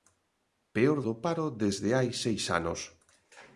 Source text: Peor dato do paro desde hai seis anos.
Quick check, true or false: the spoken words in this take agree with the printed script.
false